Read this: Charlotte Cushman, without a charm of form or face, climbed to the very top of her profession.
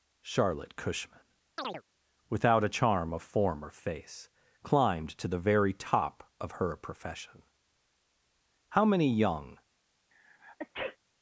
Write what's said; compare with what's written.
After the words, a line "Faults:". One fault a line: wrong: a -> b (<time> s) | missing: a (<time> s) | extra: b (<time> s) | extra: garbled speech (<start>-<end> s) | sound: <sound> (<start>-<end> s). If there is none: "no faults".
Charlotte Cushman, without a charm of form or face, climbed to the very top of her profession. How many young
Faults:
sound: chirp (1.6-1.8 s)
extra: How many young (8.7 s)
sound: sneeze (10.1-11.0 s)